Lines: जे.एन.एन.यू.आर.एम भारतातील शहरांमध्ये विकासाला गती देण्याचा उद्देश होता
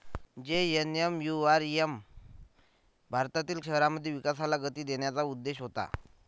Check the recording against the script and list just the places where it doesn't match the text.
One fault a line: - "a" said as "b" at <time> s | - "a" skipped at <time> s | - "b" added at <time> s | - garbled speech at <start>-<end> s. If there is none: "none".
none